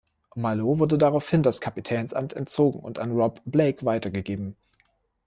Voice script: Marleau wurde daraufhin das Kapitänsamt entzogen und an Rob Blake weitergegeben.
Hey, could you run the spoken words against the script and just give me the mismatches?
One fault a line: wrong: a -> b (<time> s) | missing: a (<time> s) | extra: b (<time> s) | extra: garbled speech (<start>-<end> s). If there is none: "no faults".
no faults